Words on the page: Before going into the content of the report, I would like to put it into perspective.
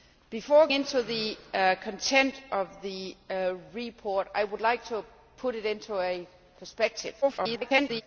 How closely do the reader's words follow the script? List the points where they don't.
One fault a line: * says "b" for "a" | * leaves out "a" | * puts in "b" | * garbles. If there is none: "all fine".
* leaves out "going"
* garbles